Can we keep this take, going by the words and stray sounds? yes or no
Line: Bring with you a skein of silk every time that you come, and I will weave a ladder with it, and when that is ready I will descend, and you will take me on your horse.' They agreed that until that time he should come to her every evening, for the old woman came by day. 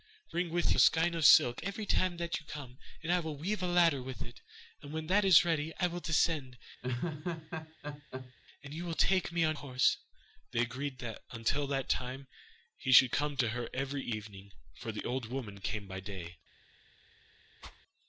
no